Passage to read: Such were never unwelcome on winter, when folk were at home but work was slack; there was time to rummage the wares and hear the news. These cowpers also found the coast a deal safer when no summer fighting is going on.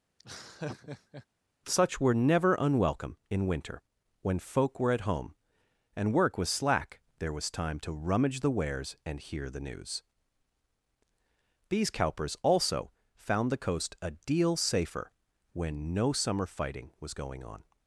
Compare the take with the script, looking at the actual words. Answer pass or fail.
fail